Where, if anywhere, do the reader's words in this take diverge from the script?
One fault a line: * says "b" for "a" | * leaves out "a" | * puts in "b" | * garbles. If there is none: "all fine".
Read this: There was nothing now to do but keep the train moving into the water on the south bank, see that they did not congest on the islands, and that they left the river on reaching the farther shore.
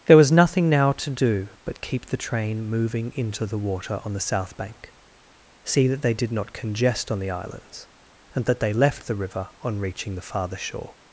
all fine